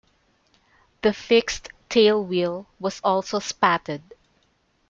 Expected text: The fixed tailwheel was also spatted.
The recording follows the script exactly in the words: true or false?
true